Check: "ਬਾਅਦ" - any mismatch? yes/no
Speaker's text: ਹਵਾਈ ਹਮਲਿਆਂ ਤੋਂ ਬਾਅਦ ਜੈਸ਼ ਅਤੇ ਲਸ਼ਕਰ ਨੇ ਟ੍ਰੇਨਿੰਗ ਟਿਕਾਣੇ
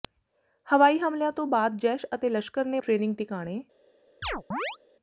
no